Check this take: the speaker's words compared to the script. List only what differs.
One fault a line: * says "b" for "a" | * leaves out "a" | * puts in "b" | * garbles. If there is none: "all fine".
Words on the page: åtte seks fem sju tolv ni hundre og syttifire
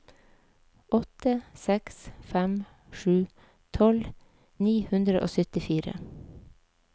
all fine